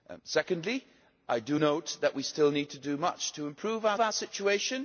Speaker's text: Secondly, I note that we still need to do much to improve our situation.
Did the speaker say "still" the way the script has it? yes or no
yes